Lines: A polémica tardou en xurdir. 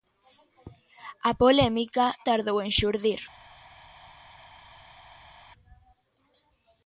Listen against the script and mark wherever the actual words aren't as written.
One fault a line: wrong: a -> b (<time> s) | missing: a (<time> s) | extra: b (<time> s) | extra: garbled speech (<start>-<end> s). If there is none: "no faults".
no faults